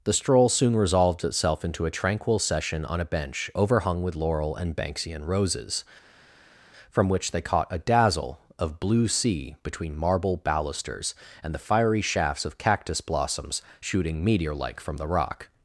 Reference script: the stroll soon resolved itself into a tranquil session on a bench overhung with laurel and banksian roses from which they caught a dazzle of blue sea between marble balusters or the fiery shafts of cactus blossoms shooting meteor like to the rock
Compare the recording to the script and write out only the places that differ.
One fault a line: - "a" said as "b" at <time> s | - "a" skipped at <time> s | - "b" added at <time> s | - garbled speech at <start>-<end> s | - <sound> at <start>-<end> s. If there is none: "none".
- "or" said as "and" at 11.4 s
- "to" said as "from" at 14.8 s